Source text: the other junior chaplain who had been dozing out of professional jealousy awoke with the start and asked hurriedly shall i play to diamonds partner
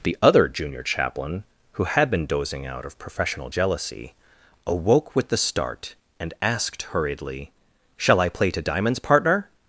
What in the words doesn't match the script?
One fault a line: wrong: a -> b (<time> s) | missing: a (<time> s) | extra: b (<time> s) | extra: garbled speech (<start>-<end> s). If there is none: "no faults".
no faults